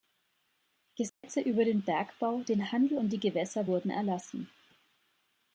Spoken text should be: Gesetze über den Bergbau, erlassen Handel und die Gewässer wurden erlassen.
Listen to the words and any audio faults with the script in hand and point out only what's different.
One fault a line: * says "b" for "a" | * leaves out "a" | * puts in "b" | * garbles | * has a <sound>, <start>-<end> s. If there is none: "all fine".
* has a dropout, 1.1-1.2 s
* says "den" for "erlassen"